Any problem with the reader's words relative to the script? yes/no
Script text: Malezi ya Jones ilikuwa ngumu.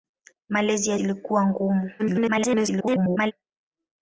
yes